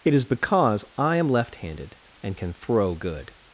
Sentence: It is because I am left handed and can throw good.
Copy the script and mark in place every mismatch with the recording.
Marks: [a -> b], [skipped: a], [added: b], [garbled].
It is because I am left handed and can throw good.